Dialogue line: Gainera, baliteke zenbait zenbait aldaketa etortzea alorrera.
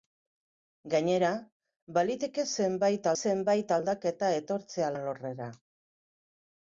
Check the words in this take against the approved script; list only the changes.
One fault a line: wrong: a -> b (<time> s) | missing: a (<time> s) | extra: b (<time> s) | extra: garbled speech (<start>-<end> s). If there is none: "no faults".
no faults